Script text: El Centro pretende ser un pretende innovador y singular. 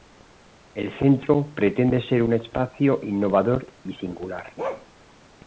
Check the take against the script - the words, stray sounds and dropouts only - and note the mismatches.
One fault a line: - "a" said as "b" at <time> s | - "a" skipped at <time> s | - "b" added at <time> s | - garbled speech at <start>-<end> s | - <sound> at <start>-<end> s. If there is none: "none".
- "pretende" said as "espacio" at 2.3 s
- bark at 4.6-4.9 s